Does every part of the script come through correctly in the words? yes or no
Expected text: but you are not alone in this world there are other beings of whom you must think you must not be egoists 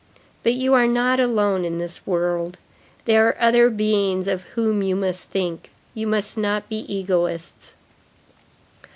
yes